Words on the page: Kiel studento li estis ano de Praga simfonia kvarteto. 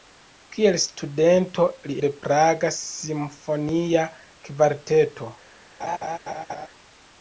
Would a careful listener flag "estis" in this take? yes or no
yes